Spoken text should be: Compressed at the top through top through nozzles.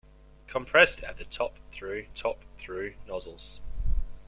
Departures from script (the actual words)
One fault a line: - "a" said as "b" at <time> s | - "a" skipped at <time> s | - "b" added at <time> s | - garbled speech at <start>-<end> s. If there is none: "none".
none